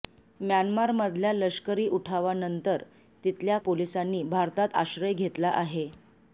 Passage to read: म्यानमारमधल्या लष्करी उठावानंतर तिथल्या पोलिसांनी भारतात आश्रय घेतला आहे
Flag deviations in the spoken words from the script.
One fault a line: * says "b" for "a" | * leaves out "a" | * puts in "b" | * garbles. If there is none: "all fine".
all fine